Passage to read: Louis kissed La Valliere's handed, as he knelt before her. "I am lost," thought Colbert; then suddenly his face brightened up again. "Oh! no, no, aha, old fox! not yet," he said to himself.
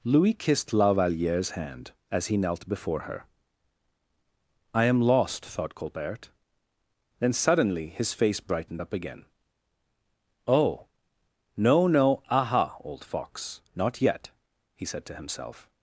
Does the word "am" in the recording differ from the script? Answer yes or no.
no